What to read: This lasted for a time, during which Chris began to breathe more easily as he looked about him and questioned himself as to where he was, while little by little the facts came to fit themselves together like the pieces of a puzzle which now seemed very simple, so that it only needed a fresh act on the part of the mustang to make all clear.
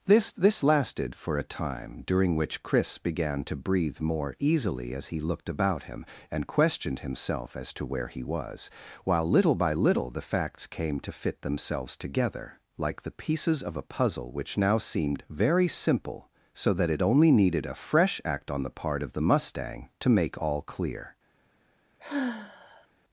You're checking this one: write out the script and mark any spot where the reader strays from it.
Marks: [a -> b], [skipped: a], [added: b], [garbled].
This [added: this] lasted for a time, during which Chris began to breathe more easily as he looked about him and questioned himself as to where he was, while little by little the facts came to fit themselves together like the pieces of a puzzle which now seemed very simple, so that it only needed a fresh act on the part of the mustang to make all clear.